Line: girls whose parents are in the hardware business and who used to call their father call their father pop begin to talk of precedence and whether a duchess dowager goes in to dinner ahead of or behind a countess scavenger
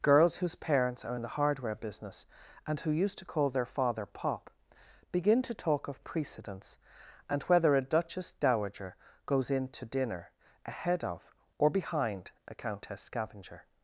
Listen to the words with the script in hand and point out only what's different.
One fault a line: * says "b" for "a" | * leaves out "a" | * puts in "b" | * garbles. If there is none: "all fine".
* leaves out "call their father"